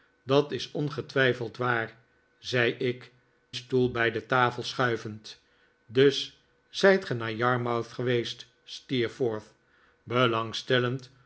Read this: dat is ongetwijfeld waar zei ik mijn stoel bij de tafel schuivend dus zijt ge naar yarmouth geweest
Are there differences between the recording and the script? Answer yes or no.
yes